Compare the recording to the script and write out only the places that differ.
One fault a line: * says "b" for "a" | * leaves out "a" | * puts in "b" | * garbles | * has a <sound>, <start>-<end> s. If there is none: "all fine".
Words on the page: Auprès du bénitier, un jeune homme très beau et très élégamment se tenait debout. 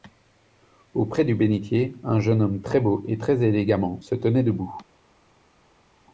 all fine